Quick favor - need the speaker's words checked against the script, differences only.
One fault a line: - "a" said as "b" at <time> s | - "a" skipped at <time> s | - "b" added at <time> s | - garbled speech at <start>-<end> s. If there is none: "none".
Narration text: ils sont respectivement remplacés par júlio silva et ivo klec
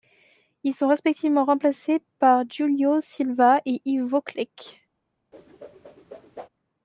none